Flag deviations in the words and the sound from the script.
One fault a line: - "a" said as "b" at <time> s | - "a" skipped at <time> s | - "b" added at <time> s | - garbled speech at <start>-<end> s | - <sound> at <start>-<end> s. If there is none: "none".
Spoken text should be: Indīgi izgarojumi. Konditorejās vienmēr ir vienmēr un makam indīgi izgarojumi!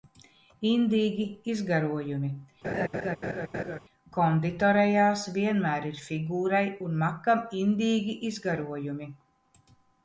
- laugh at 2.6-3.8 s
- "vienmēr" said as "figūrai" at 6.1 s